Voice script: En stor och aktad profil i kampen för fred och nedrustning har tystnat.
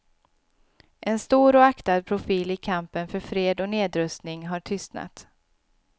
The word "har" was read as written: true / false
true